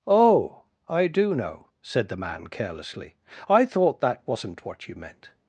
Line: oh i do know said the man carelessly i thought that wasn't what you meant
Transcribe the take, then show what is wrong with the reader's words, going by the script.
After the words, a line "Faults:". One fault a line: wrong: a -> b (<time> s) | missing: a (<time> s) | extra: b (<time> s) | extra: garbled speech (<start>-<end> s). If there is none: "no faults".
oh i do know said the man carelessly i thought that wasn't what you meant
Faults:
no faults